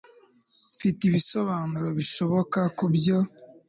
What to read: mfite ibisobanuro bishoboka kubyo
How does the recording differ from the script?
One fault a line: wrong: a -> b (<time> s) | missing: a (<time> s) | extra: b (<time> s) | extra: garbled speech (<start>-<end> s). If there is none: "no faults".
no faults